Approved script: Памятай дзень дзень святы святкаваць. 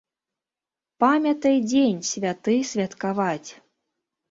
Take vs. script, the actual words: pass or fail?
fail